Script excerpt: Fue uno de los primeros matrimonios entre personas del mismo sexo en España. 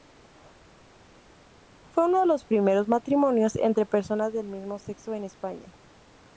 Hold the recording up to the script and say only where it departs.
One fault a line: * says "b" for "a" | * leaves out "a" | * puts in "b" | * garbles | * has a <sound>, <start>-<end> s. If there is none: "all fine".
all fine